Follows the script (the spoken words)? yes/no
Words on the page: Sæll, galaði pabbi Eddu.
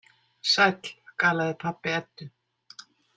yes